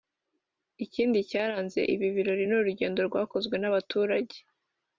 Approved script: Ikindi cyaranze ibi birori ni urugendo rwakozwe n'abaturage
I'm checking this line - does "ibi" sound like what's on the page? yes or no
yes